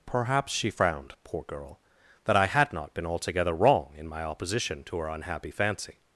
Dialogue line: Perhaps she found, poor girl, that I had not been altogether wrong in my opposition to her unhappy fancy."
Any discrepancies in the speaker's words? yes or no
yes